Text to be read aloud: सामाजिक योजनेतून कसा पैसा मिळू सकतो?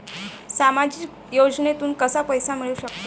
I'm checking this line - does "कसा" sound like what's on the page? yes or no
yes